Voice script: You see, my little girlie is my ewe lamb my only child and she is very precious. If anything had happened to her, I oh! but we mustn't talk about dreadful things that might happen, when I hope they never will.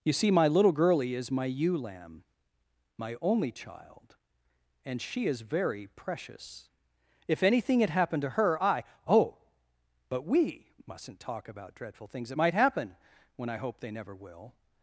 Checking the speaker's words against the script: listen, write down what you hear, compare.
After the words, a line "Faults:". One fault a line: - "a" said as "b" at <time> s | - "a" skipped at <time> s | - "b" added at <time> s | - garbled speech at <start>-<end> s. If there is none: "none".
You see, my little girlie is my ewe lamb my only child and she is very precious. If anything had happened to her, I oh! but we mustn't talk about dreadful things that might happen, when I hope they never will.
Faults:
none